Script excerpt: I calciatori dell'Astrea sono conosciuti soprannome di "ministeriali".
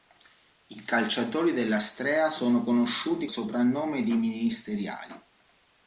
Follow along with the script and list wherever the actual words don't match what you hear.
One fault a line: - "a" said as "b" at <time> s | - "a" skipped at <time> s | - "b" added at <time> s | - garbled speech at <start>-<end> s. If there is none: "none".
none